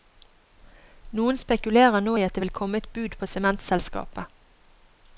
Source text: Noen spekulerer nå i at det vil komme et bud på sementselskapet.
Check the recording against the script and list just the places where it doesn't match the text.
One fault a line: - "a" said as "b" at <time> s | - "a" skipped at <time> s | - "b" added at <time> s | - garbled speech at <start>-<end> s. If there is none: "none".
none